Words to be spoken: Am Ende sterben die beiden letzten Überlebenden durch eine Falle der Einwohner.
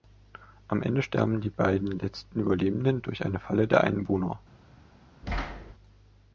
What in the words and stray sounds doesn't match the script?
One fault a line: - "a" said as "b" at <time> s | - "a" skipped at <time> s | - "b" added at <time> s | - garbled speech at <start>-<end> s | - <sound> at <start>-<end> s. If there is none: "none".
- thud at 5.2-5.7 s